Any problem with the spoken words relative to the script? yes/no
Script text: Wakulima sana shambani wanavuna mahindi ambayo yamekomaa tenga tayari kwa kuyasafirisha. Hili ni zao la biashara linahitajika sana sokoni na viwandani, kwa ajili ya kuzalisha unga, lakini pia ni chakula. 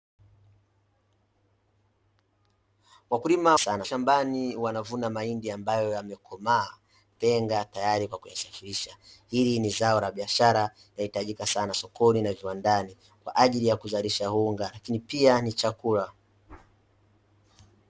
no